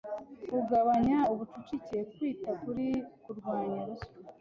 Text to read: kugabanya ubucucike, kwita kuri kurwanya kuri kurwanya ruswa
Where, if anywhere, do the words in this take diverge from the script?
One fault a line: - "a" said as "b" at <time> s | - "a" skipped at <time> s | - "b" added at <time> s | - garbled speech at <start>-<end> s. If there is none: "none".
- "kuri kurwanya" skipped at 3.8 s